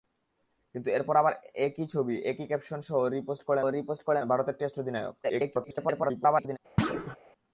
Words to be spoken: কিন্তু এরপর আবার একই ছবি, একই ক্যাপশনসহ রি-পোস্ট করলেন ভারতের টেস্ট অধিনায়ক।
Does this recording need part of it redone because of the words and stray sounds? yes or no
yes